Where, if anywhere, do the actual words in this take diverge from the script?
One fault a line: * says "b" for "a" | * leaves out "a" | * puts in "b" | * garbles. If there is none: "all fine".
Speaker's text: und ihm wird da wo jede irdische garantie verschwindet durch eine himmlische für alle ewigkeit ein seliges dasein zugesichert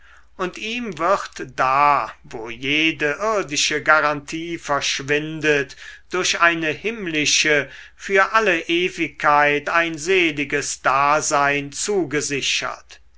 all fine